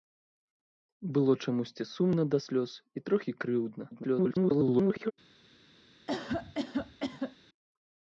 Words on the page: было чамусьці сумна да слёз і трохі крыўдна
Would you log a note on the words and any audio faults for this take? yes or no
yes